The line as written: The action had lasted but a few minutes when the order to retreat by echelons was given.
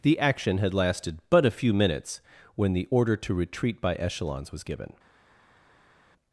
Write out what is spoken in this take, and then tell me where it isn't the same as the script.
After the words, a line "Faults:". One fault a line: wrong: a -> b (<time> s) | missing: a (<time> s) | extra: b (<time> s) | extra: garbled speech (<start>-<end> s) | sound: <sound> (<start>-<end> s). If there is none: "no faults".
The action had lasted but a few minutes when the order to retreat by echelons was given.
Faults:
no faults